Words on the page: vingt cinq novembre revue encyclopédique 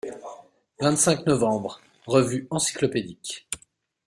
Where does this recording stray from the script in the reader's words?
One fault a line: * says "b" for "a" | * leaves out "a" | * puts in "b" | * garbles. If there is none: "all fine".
all fine